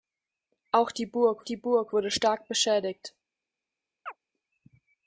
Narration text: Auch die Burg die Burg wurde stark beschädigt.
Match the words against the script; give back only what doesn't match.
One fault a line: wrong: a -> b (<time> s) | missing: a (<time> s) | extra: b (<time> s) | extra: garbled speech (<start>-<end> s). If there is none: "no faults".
no faults